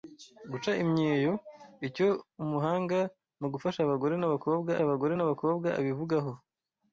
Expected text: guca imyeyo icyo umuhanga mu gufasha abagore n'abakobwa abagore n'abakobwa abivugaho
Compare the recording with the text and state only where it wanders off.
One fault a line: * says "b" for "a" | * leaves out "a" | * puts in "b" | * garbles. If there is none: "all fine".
all fine